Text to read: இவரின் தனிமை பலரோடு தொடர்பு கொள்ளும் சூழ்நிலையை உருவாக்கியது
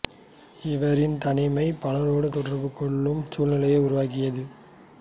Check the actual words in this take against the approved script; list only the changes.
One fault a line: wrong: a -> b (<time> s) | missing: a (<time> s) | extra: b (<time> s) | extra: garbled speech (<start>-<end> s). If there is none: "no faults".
no faults